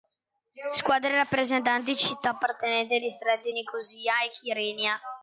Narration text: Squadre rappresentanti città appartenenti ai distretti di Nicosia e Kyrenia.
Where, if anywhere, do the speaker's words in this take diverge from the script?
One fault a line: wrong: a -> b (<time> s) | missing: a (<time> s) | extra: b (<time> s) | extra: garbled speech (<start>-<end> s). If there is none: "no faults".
missing: di (3.5 s)